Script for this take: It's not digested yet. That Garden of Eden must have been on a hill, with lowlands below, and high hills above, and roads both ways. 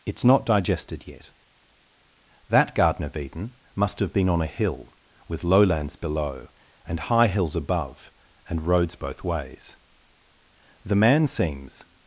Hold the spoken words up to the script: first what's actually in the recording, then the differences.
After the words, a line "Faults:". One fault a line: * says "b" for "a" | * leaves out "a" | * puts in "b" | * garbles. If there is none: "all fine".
It's not digested yet. That Garden of Eden must have been on a hill, with lowlands below, and high hills above, and roads both ways. The man seems
Faults:
* puts in "The man seems"